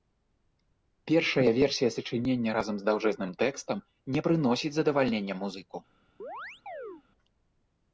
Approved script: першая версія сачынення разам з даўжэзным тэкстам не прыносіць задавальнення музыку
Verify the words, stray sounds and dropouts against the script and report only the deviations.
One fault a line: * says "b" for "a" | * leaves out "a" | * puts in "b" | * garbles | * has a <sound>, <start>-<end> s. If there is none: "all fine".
* has a chirp, 6.2-7.0 s